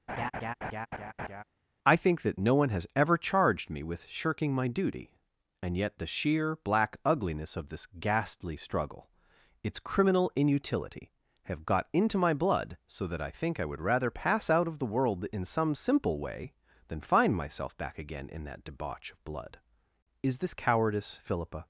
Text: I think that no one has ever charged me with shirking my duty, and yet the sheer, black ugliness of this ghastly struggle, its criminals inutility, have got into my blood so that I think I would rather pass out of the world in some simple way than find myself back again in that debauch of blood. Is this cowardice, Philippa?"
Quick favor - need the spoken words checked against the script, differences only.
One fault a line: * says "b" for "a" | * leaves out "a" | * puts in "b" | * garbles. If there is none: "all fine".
* says "criminal" for "criminals"